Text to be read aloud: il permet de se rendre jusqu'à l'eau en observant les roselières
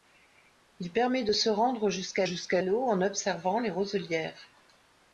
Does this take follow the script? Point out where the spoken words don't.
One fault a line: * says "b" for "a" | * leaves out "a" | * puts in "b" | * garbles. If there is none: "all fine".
* puts in "jusqu'à"